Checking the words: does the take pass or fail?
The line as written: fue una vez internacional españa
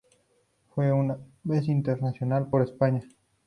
fail